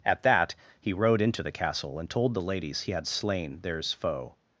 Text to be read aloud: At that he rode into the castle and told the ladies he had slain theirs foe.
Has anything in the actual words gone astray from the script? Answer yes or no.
no